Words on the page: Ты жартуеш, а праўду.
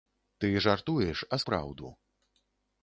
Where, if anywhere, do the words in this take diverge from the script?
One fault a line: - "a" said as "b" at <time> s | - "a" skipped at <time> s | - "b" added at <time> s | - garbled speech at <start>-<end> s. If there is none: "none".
none